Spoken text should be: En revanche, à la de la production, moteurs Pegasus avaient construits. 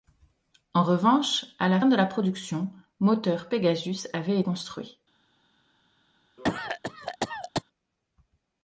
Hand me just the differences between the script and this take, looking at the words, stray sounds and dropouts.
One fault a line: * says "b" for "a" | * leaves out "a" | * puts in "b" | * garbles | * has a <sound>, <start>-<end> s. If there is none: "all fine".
* has a cough, 6.4-7.6 s